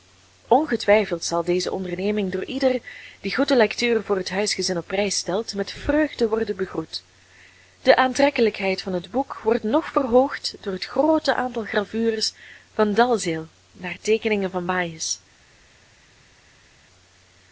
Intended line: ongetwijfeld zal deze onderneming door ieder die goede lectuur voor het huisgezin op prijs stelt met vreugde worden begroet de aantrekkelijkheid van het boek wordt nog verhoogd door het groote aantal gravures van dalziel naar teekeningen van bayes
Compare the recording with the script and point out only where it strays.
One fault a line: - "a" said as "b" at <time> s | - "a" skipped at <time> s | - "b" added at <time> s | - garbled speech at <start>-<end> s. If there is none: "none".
none